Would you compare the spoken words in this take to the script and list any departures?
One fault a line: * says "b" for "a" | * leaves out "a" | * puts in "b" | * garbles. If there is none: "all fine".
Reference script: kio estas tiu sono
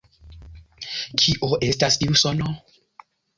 all fine